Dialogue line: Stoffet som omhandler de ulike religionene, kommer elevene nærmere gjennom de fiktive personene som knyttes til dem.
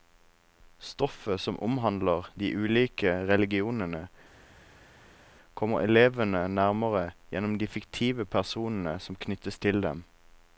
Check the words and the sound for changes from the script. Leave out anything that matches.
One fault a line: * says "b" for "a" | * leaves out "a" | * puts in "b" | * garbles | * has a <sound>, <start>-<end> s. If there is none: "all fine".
all fine